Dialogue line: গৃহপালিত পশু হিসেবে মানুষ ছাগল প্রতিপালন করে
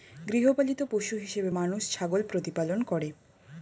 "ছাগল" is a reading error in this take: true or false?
false